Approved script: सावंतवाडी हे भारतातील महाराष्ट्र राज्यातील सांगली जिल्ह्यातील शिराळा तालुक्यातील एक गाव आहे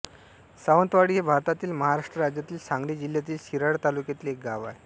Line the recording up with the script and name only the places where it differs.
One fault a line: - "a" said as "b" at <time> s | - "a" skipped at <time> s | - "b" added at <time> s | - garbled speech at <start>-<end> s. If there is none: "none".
none